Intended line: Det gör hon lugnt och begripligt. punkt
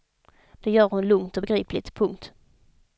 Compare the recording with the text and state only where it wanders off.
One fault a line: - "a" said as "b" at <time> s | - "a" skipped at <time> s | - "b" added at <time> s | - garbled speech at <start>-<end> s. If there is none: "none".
none